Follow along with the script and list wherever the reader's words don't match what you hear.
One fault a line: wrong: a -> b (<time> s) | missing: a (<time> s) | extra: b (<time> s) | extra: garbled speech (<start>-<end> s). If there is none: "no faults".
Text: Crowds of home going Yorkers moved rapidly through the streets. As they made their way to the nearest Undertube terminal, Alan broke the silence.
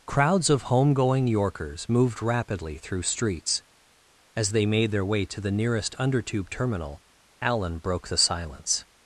missing: the (3.0 s)